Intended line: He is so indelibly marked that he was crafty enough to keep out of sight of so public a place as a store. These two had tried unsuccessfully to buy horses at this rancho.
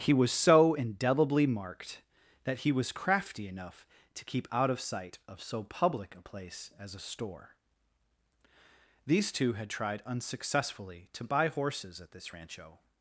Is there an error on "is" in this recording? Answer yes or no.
yes